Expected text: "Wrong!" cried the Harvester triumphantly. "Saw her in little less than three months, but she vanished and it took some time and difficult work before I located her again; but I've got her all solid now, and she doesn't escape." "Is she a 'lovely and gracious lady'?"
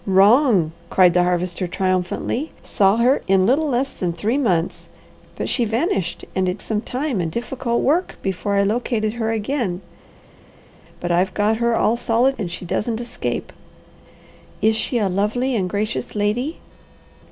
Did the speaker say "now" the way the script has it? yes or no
no